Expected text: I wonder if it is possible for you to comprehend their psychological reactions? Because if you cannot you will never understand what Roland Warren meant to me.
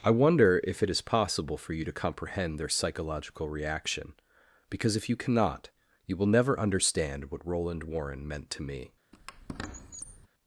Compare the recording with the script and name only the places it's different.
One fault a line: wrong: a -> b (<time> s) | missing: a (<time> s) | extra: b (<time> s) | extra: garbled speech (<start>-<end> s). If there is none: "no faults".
wrong: reactions -> reaction (3.5 s)